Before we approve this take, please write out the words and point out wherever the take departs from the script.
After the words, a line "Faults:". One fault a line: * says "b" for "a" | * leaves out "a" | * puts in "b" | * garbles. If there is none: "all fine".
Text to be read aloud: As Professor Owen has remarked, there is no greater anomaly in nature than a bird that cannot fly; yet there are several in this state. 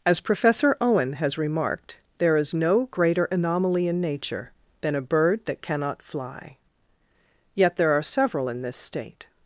As Professor Owen has remarked, there is no greater anomaly in nature than a bird that cannot fly; yet there are several in this state.
Faults:
all fine